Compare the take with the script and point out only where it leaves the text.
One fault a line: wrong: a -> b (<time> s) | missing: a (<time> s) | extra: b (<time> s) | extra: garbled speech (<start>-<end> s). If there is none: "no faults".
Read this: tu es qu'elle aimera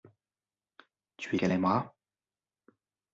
no faults